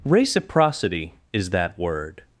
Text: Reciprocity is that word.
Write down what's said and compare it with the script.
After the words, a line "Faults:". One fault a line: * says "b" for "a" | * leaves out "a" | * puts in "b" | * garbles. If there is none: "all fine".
Reciprocity is that word.
Faults:
all fine